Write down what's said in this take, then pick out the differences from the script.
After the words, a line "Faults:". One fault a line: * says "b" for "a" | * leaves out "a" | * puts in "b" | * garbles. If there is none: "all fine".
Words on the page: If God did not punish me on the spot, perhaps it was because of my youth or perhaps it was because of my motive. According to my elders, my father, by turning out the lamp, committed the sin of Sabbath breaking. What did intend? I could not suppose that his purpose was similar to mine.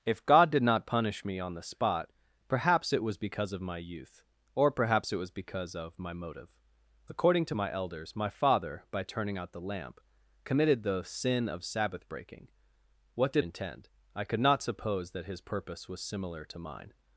If God did not punish me on the spot, perhaps it was because of my youth or perhaps it was because of my motive. According to my elders, my father, by turning out the lamp, committed the sin of Sabbath breaking. What did intend? I could not suppose that his purpose was similar to mine.
Faults:
all fine